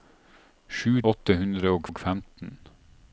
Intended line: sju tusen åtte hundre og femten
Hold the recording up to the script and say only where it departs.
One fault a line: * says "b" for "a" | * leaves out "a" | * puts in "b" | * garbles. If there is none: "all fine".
* leaves out "tusen"
* puts in "og"